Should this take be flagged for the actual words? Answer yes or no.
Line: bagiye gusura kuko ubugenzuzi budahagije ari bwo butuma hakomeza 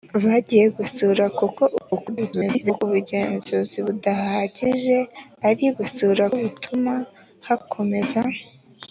yes